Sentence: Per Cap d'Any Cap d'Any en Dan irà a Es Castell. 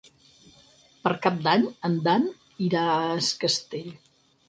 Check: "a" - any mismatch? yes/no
no